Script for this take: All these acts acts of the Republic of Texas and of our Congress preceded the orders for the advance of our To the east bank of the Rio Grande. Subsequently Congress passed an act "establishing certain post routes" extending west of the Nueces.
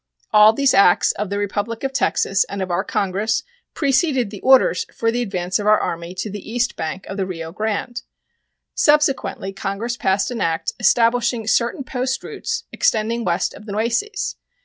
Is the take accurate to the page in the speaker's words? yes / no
no